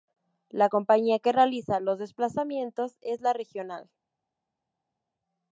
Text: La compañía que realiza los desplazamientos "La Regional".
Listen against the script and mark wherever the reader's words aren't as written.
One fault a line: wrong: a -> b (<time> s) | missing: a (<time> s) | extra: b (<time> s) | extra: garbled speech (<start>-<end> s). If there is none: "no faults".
extra: es (3.0 s)